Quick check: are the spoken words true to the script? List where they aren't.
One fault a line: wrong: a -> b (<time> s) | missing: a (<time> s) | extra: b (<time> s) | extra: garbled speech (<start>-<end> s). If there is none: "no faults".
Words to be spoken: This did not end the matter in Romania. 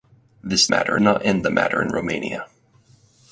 wrong: did -> matter (0.7 s)